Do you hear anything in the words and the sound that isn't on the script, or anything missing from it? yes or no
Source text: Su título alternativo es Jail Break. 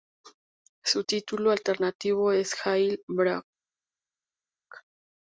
no